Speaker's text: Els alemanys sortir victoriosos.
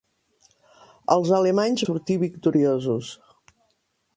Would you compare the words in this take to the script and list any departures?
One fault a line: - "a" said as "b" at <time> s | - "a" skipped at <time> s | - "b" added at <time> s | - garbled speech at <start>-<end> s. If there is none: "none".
none